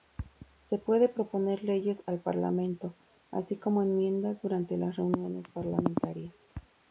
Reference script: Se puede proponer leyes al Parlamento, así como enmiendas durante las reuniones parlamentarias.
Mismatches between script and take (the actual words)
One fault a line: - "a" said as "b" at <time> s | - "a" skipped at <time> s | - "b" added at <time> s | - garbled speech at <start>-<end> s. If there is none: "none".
none